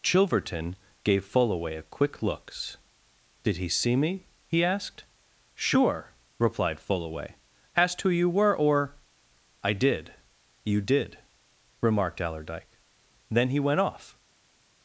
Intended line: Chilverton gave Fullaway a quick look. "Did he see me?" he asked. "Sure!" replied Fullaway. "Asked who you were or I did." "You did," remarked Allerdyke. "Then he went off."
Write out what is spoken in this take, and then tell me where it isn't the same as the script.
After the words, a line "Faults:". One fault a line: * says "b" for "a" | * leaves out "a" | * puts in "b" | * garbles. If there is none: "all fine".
Chilverton gave Fullaway a quick looks. "Did he see me?" he asked. "Sure!" replied Fullaway. "Asked who you were or I did." "You did," remarked Allerdyke. "Then he went off."
Faults:
* says "looks" for "look"